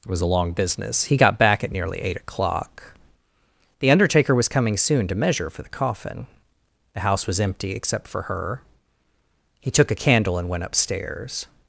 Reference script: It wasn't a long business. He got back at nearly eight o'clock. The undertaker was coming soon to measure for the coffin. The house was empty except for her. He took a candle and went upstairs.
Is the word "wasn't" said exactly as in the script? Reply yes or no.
no